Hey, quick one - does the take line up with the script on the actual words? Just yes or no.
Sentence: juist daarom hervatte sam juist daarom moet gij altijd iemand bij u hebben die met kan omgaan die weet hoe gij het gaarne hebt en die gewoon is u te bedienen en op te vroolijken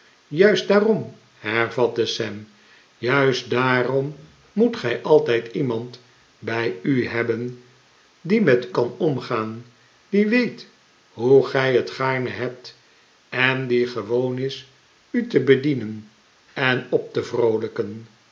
yes